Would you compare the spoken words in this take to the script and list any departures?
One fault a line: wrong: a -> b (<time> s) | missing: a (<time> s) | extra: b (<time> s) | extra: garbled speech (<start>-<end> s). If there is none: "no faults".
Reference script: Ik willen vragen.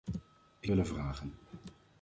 no faults